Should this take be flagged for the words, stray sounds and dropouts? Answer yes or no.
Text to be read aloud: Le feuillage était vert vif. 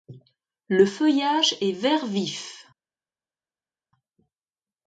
yes